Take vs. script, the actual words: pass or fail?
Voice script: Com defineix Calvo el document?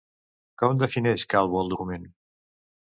pass